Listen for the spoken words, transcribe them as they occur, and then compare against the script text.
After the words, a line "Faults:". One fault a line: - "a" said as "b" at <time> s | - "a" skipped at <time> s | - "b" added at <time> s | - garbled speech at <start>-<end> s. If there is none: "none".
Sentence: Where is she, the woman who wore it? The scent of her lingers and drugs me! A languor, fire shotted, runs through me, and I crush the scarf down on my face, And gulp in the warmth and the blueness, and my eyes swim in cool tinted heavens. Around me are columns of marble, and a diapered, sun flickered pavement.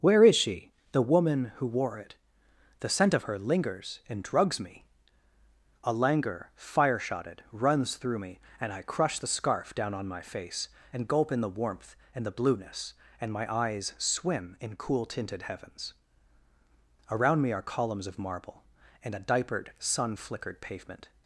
Where is she, the woman who wore it? The scent of her lingers and drugs me! A languor, fire shotted, runs through me, and I crush the scarf down on my face, And gulp in the warmth and the blueness, and my eyes swim in cool tinted heavens. Around me are columns of marble, and a diapered, sun flickered pavement.
Faults:
none